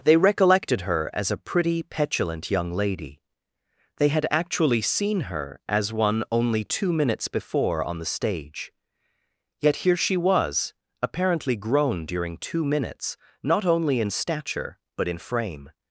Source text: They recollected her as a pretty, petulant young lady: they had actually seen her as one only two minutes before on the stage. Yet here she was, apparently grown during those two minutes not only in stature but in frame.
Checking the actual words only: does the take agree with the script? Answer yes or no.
no